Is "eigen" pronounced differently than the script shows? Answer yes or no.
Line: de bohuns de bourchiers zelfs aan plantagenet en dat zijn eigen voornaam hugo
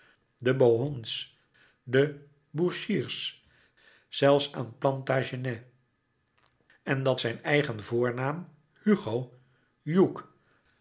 no